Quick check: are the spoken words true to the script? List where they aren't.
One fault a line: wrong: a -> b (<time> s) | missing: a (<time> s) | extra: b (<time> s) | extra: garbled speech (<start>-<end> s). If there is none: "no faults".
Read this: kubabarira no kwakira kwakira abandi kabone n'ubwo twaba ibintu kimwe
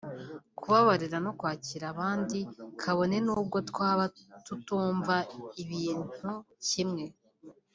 missing: kwakira (1.9 s)
extra: tutumva (4.5 s)